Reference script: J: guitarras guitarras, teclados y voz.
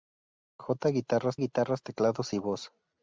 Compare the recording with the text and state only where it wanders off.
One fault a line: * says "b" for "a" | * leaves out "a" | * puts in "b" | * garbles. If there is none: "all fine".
all fine